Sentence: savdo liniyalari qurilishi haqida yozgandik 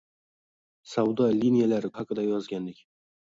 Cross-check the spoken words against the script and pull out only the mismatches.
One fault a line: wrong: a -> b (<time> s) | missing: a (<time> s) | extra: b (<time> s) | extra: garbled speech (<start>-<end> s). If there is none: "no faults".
missing: qurilishi (1.9 s)